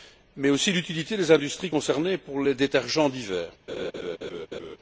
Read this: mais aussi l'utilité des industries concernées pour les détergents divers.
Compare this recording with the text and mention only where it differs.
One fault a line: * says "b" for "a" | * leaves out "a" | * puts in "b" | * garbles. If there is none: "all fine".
all fine